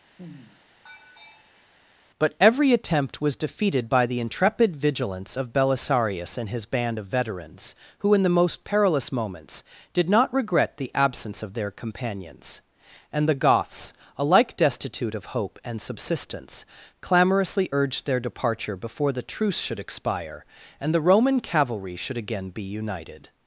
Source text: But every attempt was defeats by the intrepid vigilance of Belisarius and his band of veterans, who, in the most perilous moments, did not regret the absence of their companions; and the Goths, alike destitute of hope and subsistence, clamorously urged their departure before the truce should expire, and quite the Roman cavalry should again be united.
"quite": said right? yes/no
no